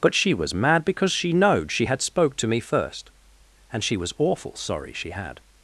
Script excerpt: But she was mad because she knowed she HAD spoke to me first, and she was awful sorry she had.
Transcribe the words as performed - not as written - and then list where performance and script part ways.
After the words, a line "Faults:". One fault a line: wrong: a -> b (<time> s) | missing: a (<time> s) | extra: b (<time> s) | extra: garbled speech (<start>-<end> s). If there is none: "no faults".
But she was mad because she knowed she HAD spoke to me first, and she was awful sorry she had.
Faults:
no faults